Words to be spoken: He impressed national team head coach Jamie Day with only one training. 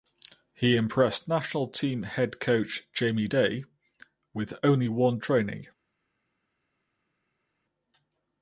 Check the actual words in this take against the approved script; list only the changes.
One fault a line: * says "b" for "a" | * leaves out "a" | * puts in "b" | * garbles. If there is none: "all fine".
all fine